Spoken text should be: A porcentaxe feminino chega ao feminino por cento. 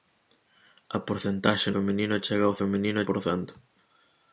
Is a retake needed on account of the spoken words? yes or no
no